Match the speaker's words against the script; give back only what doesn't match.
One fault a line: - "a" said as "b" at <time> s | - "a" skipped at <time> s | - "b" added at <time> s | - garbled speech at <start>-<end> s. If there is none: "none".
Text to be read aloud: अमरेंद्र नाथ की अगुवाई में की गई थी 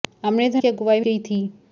- "नाथ" skipped at 0.6 s
- "में की" skipped at 1.0 s